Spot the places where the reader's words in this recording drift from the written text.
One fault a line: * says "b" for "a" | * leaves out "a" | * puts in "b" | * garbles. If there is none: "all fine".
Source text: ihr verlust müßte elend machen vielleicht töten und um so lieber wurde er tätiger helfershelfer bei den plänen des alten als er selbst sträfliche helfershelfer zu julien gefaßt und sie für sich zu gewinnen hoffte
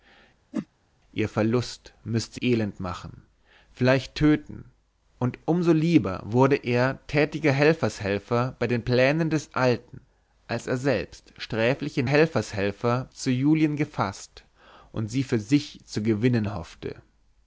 all fine